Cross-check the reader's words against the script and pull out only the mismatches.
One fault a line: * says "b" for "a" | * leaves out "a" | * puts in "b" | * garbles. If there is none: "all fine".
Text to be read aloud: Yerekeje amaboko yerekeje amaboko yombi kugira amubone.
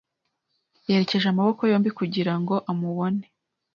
* leaves out "yerekeje amaboko"
* puts in "ngo"